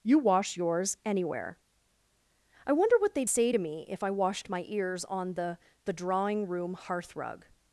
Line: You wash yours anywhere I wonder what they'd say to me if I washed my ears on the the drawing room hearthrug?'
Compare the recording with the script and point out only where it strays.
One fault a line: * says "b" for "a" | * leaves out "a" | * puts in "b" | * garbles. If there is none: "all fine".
all fine